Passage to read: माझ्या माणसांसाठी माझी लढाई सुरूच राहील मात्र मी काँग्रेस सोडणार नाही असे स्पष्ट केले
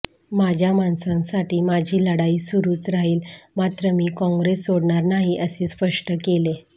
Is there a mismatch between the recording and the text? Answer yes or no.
no